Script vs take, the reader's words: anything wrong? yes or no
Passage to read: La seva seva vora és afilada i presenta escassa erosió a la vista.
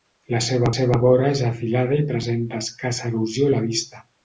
no